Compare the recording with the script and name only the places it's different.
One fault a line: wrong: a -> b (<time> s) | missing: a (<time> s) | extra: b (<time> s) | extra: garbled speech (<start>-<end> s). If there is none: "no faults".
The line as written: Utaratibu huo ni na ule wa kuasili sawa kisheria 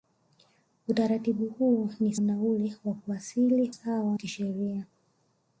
no faults